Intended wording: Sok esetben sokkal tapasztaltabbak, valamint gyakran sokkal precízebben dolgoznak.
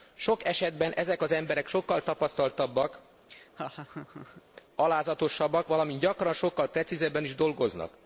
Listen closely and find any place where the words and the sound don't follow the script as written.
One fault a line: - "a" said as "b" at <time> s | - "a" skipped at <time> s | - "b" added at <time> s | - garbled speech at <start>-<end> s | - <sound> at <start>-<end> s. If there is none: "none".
- "ezek az emberek" added at 0.9 s
- laugh at 3.3-4.4 s
- "alázatosabbak" added at 4.7 s
- "is" added at 7.2 s